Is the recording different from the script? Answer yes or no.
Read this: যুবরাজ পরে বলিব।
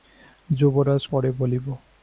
no